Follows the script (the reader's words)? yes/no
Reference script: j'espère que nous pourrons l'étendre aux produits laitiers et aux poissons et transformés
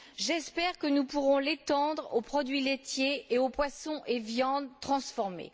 no